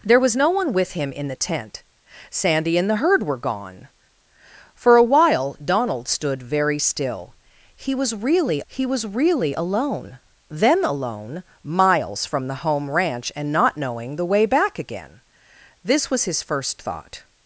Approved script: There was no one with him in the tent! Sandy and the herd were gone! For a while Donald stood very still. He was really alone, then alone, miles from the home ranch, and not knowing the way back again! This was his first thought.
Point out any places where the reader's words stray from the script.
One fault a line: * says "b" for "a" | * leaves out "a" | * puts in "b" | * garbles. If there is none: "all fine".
* puts in "he was really"